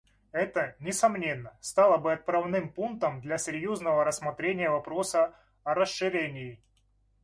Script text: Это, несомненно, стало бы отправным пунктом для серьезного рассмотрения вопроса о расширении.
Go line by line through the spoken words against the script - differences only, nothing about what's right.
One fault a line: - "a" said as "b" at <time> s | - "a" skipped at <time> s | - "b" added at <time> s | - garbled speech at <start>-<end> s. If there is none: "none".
none